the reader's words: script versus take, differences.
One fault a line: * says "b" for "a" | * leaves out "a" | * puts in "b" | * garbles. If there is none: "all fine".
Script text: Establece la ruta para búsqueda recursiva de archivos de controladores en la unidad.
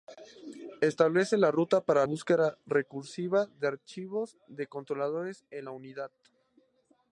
all fine